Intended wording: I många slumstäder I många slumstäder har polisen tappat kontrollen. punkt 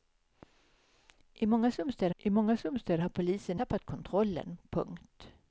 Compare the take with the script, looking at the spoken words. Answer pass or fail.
pass